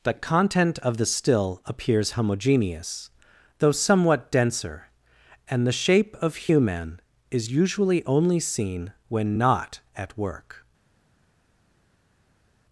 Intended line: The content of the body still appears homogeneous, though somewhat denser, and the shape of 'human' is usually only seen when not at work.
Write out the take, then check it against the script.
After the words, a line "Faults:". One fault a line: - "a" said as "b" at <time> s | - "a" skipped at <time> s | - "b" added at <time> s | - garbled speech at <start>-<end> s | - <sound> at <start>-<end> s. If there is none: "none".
The content of the still appears homogeneous, though somewhat denser, and the shape of 'human' is usually only seen when not at work.
Faults:
- "body" skipped at 1.0 s